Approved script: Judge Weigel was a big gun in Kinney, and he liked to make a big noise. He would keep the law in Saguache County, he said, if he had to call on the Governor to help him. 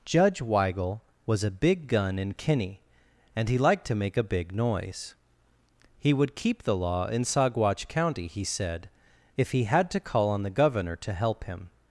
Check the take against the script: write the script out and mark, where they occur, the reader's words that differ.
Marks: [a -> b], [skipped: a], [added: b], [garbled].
Judge Weigel was a big gun in Kinney, and he liked to make a big noise. He would keep the law in Saguache County, he said, if he had to call on the Governor to help him.